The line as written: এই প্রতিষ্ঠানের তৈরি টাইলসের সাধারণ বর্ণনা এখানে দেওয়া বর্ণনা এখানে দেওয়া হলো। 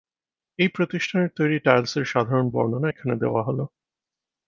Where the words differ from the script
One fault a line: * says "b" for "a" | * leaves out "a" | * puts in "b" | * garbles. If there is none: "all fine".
* leaves out "বর্ণনা এখানে দেওয়া"